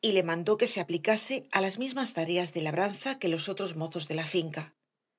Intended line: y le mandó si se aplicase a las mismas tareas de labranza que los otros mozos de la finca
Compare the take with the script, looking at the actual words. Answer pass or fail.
fail